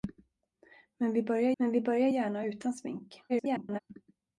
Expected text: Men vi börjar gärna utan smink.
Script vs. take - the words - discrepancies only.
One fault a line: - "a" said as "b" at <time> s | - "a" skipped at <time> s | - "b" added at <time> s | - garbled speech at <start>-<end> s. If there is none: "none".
- "men vi börjar" added at 1.6 s
- garbled speech at 3.3-3.8 s